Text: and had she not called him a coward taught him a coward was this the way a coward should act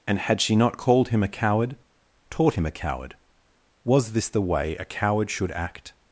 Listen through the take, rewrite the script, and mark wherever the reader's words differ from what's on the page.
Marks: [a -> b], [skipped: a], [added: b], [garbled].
and had she not called him a coward taught him a coward was this the way a coward should act